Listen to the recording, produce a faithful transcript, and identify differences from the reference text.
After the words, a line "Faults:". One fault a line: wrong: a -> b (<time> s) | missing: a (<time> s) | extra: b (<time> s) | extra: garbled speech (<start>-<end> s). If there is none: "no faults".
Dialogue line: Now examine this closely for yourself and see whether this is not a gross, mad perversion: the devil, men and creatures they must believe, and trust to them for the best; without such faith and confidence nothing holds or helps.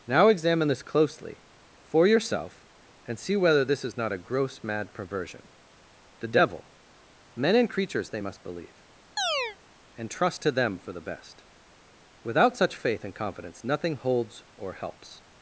Now examine this closely for yourself and see whether this is not a gross, mad perversion: the devil, men and creatures they must believe, and trust to them for the best; without such faith and confidence nothing holds or helps.
Faults:
no faults